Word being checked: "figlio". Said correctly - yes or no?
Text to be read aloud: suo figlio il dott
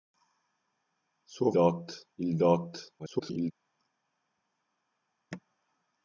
no